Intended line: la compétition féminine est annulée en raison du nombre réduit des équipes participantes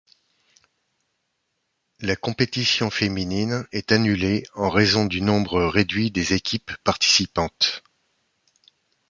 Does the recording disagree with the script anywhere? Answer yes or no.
no